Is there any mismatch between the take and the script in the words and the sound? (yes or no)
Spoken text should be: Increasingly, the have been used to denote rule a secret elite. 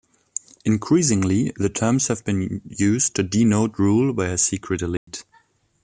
yes